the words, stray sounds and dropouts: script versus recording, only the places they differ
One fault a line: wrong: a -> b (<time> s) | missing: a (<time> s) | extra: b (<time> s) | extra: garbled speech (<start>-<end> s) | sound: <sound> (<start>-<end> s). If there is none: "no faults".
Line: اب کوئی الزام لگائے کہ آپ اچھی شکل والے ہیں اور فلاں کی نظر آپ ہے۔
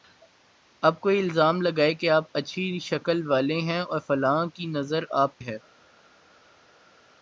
no faults